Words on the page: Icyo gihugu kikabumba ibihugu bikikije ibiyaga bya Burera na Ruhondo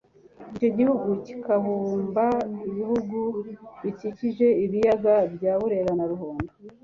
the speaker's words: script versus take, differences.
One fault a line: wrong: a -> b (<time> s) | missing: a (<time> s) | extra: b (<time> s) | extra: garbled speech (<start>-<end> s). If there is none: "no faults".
no faults